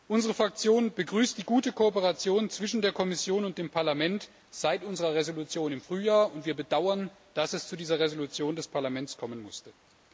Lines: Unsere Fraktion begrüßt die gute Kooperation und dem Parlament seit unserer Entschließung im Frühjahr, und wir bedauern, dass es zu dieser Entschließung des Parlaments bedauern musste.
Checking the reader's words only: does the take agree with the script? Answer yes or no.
no